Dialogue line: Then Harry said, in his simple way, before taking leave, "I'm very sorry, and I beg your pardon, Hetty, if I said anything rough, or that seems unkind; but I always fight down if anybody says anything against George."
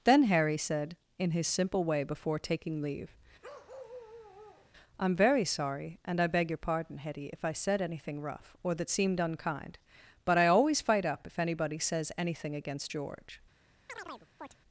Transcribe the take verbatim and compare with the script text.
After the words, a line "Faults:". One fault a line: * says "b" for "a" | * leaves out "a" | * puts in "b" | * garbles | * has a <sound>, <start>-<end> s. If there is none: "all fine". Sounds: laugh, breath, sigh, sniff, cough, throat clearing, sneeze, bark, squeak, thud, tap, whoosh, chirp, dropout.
Then Harry said, in his simple way, before taking leave, "I'm very sorry, and I beg your pardon, Hetty, if I said anything rough, or that seemed unkind; but I always fight up if anybody says anything against George."
Faults:
* has a bark, 3.4-4.7 s
* says "seemed" for "seems"
* says "up" for "down"
* has a chirp, 13.9-14.6 s